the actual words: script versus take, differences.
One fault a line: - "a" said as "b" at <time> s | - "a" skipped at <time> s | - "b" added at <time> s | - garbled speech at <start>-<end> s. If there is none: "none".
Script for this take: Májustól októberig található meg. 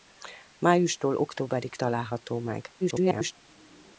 - garbled speech at 2.8-3.3 s